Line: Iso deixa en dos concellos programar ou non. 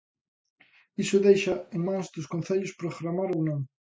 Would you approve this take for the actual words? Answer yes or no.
no